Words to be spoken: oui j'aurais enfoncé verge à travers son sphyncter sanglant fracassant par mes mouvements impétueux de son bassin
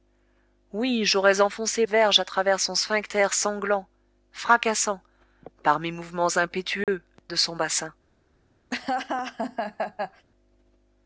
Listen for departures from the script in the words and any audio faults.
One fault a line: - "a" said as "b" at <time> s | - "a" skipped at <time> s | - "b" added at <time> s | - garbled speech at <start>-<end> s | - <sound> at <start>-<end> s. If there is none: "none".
- dropout at 6.8-6.9 s
- laugh at 8.7-10.2 s